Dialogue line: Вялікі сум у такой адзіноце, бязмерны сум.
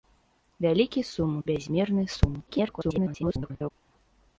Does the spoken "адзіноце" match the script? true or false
false